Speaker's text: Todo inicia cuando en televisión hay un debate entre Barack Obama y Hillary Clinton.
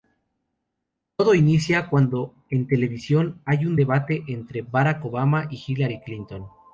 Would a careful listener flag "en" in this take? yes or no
no